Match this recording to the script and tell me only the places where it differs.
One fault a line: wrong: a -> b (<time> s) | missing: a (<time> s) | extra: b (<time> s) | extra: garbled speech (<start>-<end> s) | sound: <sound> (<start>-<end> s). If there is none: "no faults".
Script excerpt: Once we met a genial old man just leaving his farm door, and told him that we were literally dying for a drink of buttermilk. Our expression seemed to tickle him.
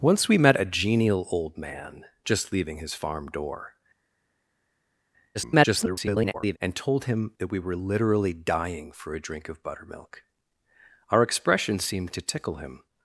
extra: garbled speech (5.3-6.6 s)